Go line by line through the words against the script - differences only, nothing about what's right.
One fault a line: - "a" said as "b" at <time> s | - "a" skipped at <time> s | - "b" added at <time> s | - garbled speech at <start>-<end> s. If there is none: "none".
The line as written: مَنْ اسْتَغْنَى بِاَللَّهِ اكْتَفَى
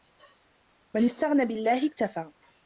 none